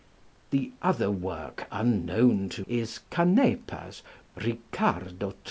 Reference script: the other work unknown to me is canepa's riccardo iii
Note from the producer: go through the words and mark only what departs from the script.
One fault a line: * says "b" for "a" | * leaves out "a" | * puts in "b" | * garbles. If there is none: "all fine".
* leaves out "me"